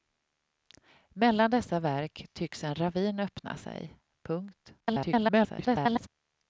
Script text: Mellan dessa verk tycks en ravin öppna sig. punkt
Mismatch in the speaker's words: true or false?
true